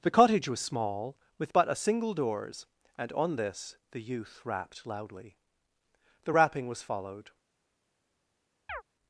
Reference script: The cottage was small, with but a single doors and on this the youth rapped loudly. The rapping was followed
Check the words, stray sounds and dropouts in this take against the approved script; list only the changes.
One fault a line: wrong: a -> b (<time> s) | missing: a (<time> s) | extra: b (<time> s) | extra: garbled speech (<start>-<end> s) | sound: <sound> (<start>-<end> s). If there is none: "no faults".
sound: chirp (8.7-8.8 s)